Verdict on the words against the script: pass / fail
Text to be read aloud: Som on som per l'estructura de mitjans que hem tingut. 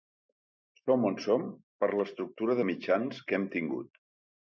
pass